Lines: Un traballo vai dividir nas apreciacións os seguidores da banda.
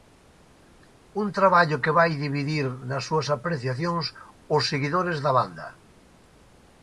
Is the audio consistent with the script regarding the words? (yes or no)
no